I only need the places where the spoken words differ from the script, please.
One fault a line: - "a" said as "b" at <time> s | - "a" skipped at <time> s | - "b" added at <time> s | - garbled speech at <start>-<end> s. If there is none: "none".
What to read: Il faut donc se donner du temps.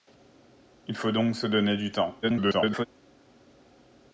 - garbled speech at 2.2-2.9 s